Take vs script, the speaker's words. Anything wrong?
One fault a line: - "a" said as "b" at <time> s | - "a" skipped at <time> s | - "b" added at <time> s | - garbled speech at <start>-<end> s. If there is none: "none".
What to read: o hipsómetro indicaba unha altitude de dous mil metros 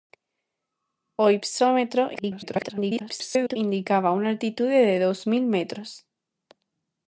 - garbled speech at 2.1-3.6 s